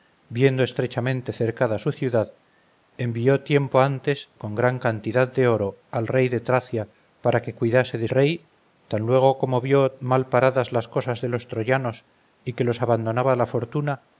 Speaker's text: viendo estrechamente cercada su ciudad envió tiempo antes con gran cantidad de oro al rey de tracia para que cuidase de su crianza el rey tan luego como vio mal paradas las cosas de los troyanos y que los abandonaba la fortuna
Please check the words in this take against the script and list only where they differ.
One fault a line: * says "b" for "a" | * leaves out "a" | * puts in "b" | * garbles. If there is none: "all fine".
* leaves out "su crianza el"